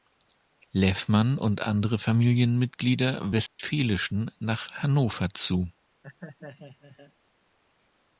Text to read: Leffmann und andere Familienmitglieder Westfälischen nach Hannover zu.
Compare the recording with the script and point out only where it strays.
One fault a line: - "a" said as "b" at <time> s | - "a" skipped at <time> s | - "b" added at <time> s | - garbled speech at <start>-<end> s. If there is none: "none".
none